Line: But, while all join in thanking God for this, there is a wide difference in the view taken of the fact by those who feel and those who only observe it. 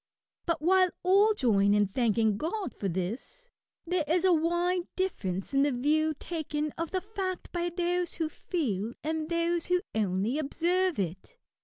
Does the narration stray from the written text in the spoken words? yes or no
no